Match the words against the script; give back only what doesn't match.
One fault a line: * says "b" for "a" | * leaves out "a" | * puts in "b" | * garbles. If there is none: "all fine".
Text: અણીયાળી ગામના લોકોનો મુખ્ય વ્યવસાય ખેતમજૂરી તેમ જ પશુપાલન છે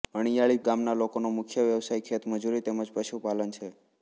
all fine